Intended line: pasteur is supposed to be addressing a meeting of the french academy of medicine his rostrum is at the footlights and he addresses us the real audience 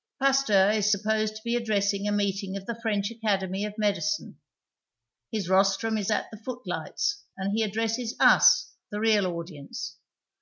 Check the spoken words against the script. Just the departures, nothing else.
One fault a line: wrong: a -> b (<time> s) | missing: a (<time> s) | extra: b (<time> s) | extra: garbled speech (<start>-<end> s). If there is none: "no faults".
no faults